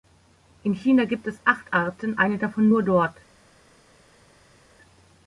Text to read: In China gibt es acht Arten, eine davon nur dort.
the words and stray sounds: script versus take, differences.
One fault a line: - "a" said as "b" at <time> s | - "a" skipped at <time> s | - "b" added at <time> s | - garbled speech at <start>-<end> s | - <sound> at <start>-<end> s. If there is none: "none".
none